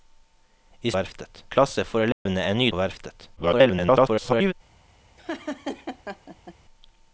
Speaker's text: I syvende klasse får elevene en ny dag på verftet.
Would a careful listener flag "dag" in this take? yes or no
yes